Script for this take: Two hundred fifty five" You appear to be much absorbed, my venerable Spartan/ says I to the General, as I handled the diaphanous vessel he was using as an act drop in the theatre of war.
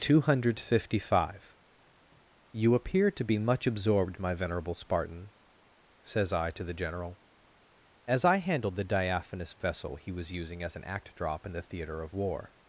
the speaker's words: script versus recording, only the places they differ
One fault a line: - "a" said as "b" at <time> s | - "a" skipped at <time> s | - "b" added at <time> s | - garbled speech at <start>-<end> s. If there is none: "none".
none